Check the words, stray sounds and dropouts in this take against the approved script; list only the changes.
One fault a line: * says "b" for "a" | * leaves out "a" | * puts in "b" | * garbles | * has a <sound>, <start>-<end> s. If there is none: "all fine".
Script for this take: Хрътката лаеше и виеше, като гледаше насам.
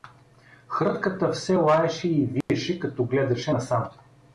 * puts in "все"
* has a dropout, 2.4-2.5 s